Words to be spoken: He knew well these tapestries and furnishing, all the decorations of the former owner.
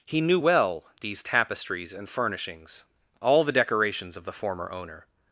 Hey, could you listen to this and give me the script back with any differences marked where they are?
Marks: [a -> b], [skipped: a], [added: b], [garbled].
He knew well these tapestries and [furnishing, -> furnishings] all the decorations of the former owner.